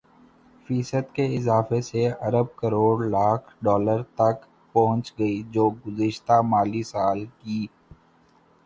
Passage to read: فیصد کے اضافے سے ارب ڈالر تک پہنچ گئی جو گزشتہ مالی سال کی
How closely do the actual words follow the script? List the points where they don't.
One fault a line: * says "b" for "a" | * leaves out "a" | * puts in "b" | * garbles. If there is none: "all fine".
* puts in "کروڑ لاکھ"